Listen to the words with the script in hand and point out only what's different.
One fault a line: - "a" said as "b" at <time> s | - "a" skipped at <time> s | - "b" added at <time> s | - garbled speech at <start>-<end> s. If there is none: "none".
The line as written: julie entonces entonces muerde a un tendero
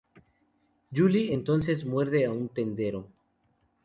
- "entonces" skipped at 1.8 s